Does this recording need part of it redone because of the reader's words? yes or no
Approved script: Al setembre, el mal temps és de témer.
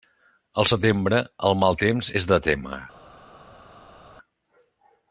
no